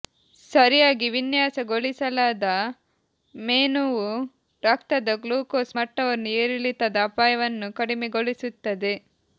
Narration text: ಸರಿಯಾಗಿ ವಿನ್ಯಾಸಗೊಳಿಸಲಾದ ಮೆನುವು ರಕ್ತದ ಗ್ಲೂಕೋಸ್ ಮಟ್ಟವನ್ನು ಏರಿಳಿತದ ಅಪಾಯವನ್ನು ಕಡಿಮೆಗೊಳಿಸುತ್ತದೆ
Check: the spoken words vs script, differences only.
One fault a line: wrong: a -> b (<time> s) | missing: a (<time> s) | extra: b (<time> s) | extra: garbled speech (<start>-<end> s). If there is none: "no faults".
no faults